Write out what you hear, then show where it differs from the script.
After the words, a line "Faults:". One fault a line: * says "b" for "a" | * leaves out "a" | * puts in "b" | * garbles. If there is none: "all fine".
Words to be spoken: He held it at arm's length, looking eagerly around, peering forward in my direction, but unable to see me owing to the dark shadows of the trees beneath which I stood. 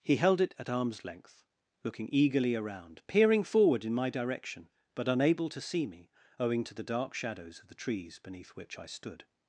He held it at arm's length, looking eagerly around, peering forward in my direction, but unable to see me owing to the dark shadows of the trees beneath which I stood.
Faults:
all fine